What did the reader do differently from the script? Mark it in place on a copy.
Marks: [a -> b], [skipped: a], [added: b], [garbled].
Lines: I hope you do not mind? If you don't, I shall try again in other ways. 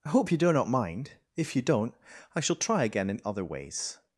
I hope you do not mind? If you don't, I shall try again in other ways.